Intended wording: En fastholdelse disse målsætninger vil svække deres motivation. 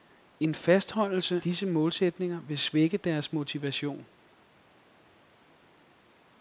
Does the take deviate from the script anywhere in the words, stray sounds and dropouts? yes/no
no